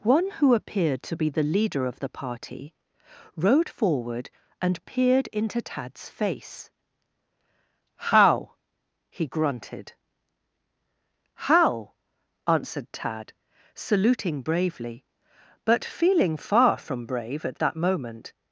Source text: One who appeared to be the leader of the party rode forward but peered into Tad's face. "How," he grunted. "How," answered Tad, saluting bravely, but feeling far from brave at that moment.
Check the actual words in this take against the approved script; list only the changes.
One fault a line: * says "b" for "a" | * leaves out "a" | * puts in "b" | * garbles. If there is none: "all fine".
* says "and" for "but"